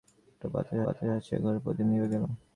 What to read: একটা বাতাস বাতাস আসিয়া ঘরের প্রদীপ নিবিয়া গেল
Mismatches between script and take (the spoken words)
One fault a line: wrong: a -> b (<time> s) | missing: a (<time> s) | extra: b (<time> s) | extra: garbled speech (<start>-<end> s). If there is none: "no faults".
no faults